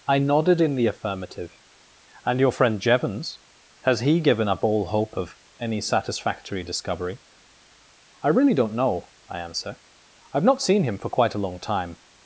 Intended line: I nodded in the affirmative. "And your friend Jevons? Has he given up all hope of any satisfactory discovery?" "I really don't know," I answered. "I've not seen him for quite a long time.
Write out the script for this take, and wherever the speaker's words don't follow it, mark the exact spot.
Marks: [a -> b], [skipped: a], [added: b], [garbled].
I nodded in the affirmative. "And your friend Jevons? Has he given up all hope of any satisfactory discovery?" "I really don't know," I [answered. -> answer] "I've not seen him for quite a long time.